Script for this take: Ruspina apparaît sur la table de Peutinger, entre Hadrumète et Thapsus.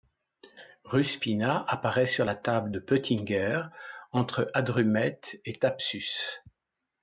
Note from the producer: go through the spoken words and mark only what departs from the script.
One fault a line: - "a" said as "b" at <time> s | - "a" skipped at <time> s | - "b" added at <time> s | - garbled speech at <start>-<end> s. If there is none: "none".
none